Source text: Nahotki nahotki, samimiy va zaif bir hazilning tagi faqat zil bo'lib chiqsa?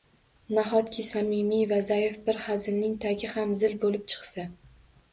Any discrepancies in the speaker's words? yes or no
yes